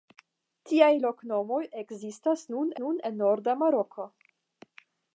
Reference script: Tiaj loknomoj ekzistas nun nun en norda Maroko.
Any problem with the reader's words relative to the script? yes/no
no